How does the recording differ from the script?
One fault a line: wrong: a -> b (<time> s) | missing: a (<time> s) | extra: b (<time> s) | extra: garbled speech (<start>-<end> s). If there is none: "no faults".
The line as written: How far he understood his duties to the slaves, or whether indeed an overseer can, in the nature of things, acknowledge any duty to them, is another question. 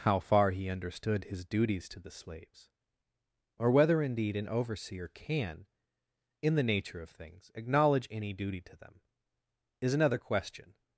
no faults